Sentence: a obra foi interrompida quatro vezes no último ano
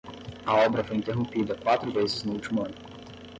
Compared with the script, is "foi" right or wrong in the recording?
right